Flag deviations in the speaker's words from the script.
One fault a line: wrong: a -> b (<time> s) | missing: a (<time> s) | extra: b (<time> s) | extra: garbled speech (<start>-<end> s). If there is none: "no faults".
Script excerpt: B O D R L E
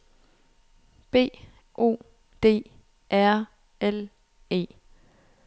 no faults